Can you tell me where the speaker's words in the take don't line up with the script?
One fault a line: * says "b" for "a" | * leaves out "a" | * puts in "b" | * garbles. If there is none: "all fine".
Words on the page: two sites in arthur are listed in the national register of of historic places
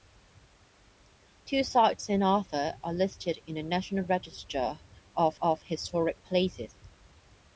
all fine